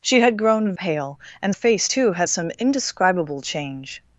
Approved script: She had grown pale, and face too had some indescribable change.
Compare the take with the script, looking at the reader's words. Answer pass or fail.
pass